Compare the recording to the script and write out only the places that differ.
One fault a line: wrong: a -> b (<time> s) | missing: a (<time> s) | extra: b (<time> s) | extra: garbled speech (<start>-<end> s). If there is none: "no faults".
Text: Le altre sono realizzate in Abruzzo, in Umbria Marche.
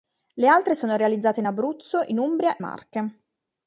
no faults